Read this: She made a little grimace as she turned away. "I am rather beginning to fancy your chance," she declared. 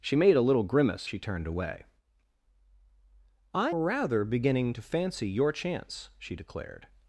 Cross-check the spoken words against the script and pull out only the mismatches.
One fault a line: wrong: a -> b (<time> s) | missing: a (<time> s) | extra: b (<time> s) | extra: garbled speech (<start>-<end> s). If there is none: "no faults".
missing: as (1.1 s)
missing: am (3.7 s)